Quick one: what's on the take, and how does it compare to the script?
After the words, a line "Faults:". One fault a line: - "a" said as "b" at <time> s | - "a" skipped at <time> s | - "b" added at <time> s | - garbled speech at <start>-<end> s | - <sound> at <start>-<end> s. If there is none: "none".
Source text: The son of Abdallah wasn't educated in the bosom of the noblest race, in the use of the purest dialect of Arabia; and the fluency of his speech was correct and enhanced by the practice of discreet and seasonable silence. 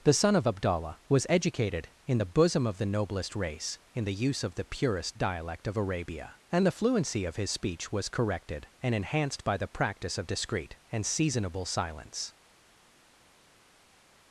The son of Abdallah was educated in the bosom of the noblest race, in the use of the purest dialect of Arabia; and the fluency of his speech was corrected and enhanced by the practice of discreet and seasonable silence.
Faults:
- "wasn't" said as "was" at 1.1 s
- "correct" said as "corrected" at 8.1 s